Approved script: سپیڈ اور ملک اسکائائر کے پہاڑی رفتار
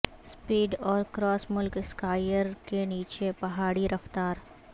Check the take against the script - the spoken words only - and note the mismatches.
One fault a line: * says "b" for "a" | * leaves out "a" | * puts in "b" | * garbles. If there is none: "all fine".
* puts in "کراس"
* puts in "نیچے"